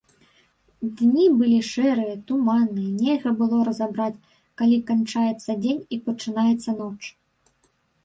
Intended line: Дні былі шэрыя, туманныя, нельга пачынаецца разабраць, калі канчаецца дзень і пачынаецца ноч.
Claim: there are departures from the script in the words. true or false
true